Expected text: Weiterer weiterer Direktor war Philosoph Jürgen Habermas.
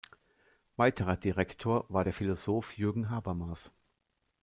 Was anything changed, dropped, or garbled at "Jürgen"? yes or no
no